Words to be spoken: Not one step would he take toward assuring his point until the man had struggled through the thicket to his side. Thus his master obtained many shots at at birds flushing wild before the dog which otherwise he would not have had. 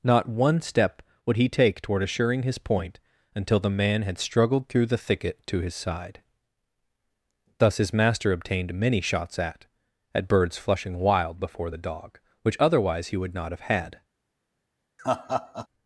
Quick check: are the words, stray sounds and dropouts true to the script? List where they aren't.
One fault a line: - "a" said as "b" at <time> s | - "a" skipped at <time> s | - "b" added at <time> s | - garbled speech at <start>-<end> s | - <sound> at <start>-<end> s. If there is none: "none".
- laugh at 15.0-15.7 s